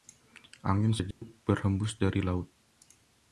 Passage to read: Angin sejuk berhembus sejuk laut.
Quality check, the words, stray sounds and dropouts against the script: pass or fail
fail